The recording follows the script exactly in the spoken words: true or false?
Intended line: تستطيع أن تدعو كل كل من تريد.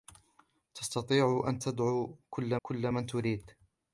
true